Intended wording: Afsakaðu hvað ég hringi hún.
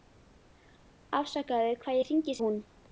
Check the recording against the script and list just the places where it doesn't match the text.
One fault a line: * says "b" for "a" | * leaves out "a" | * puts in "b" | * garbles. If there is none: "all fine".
all fine